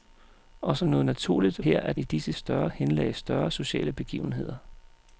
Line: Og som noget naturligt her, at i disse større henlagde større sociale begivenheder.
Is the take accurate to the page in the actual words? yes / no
yes